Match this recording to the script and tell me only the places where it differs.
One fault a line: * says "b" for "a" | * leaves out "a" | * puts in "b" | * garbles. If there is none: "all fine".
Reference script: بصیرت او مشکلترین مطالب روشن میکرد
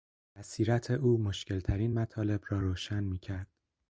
* puts in "را"